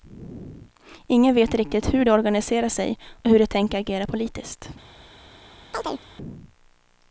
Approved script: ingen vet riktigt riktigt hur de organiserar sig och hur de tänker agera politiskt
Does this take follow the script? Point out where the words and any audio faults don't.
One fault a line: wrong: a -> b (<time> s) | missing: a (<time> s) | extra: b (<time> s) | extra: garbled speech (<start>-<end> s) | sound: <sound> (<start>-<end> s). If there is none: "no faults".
missing: riktigt (1.9 s)
sound: chirp (5.7-6.1 s)